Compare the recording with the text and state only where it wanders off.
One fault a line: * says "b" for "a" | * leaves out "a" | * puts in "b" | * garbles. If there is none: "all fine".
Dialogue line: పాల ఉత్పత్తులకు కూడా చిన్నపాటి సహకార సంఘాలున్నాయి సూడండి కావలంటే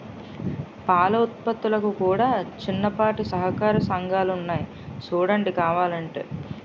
all fine